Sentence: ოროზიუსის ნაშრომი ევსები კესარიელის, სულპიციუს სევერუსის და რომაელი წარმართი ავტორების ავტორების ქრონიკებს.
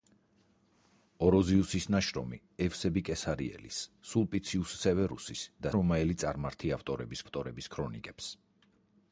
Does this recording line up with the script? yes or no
yes